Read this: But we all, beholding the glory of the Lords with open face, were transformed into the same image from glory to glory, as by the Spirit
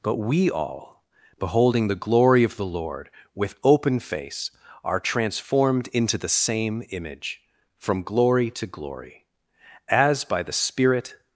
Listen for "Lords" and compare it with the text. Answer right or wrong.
wrong